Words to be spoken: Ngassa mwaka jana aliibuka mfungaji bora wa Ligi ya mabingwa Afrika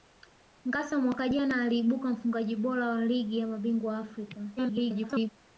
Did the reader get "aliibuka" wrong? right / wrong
right